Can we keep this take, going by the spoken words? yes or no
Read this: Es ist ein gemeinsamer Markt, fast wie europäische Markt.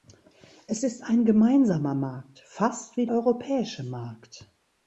yes